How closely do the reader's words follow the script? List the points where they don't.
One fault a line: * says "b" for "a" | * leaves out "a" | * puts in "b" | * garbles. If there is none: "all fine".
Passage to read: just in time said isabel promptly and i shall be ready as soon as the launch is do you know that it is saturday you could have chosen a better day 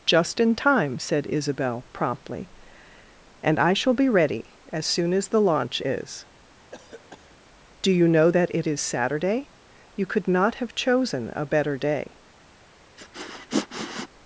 * puts in "not"